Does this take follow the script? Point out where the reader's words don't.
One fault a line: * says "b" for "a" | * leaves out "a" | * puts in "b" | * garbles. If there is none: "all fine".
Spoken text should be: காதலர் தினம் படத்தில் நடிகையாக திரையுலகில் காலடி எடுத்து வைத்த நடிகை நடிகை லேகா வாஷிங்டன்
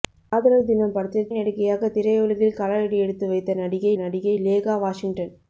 all fine